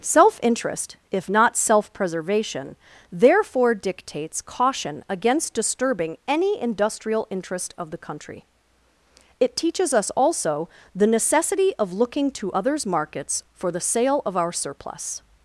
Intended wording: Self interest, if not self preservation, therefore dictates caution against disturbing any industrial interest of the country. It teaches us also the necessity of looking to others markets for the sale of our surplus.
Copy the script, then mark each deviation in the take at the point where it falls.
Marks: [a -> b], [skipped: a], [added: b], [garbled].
Self interest, if not self preservation, therefore dictates caution against disturbing any industrial interest of the country. It teaches us also the necessity of looking to others markets for the sale of our surplus.